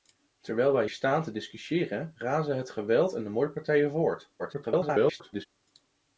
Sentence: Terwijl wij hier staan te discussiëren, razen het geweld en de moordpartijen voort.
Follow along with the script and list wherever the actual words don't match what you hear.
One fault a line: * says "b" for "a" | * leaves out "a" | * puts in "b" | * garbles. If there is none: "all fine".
* leaves out "hier"
* garbles